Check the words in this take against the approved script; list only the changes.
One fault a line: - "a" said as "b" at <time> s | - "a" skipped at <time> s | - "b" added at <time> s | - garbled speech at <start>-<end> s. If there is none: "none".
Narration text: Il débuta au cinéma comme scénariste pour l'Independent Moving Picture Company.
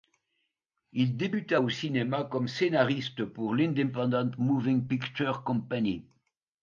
none